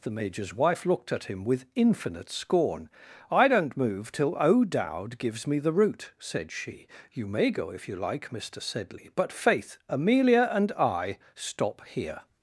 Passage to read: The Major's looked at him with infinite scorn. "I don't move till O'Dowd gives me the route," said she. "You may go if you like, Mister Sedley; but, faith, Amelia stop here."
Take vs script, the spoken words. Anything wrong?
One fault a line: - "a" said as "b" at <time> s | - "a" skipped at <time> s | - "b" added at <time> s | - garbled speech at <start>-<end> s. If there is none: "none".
- "wife" added at 0.5 s
- "and I" added at 10.5 s